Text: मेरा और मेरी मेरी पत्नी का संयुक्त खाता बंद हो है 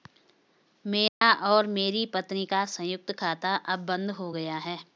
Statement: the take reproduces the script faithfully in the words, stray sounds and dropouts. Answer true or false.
false